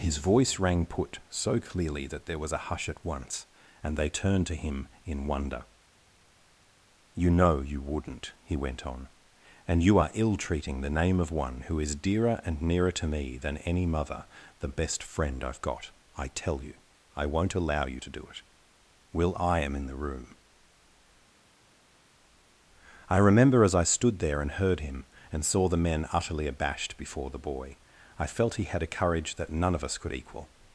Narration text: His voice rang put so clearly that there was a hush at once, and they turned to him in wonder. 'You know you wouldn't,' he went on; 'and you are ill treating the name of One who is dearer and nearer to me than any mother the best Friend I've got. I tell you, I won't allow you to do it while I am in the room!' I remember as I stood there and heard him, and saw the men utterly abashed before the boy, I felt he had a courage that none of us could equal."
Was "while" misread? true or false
true